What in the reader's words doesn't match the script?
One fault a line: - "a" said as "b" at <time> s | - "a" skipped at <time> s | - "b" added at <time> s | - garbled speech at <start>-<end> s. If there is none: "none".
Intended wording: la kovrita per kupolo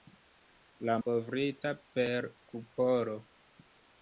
none